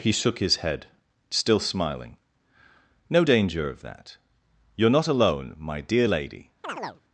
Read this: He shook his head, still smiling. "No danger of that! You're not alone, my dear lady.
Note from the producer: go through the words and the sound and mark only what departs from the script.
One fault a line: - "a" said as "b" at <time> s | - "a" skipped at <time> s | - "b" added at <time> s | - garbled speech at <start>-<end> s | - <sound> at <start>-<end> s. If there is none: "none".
- chirp at 6.6-7.0 s